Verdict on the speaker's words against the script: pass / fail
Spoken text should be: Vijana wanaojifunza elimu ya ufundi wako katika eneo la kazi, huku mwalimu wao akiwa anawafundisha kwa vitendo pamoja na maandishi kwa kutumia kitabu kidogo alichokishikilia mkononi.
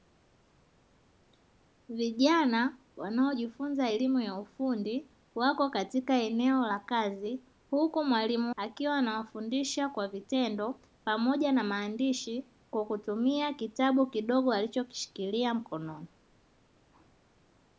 fail